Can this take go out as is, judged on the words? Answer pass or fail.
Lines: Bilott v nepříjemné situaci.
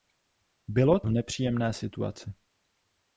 pass